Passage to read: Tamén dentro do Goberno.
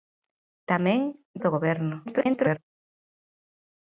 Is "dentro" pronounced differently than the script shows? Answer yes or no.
yes